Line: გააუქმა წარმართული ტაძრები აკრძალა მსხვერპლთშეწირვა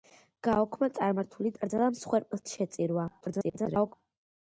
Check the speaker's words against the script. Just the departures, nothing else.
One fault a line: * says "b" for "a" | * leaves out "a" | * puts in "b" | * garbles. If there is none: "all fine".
* leaves out "ტაძრები"
* garbles